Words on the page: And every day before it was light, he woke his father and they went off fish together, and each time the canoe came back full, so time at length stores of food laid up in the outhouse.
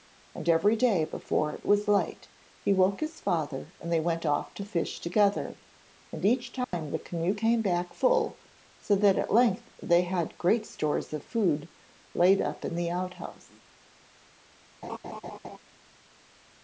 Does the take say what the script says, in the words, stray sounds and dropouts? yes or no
no